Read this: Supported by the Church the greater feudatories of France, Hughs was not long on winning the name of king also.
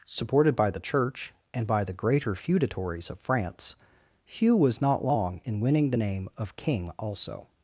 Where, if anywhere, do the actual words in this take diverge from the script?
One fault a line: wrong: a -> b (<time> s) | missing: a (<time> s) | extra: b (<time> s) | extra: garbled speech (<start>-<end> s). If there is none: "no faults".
extra: and by (1.5 s)
wrong: Hughs -> Hugh (4.2 s)
wrong: on -> in (5.4 s)